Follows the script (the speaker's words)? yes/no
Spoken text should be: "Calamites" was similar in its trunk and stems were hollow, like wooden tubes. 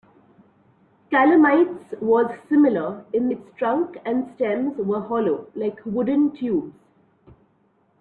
yes